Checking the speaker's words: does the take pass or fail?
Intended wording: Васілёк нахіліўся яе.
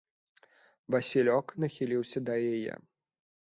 fail